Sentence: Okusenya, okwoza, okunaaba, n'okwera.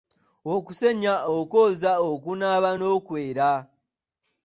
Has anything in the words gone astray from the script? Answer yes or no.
no